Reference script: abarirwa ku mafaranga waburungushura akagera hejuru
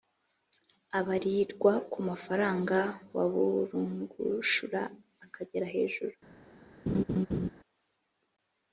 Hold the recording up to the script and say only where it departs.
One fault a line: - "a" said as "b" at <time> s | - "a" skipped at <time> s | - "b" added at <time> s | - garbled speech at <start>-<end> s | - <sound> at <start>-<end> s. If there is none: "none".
- laugh at 6.9-7.5 s